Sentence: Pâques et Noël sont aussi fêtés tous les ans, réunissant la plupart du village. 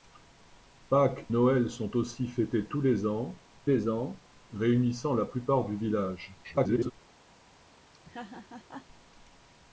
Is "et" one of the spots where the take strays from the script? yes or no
yes